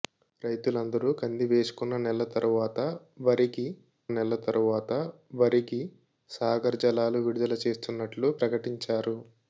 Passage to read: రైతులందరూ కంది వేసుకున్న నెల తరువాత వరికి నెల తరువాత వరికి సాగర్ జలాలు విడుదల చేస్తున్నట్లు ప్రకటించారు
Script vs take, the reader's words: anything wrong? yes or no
no